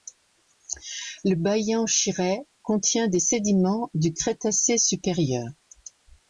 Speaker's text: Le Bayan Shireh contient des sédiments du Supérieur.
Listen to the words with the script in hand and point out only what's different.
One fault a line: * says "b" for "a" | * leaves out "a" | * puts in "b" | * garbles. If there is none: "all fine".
* puts in "Crétacé"